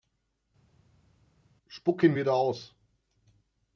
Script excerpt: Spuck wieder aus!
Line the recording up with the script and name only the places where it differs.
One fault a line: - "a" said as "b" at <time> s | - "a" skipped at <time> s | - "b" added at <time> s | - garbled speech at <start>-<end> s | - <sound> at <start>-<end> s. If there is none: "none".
- "ihn" added at 2.0 s